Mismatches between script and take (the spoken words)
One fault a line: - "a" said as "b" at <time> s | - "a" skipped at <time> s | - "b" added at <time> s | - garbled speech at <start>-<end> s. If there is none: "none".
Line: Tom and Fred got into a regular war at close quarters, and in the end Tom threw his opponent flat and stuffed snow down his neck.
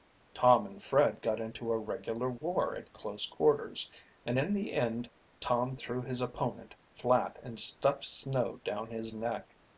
none